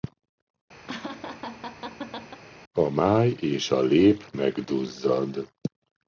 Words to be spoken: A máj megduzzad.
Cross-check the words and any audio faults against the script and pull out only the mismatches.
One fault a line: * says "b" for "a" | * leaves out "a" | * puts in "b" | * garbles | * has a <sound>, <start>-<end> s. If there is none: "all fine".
* has a laugh, 0.9-2.4 s
* puts in "és a lép"